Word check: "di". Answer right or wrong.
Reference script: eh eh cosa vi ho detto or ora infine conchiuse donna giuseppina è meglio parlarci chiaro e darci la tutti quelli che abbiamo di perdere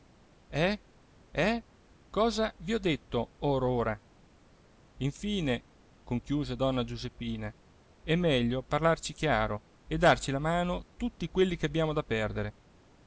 wrong